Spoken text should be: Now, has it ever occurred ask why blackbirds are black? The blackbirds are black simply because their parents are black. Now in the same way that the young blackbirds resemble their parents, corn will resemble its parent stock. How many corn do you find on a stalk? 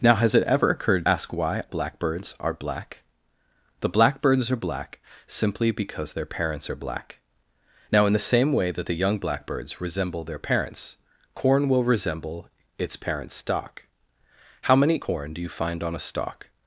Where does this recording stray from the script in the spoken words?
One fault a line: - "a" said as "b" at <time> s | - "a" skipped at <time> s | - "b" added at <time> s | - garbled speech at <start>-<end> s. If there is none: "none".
none